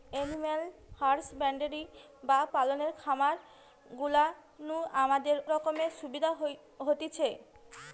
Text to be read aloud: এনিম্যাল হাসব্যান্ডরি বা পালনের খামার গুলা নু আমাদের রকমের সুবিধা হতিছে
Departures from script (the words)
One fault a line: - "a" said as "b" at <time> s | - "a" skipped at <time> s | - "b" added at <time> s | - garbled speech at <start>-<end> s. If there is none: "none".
none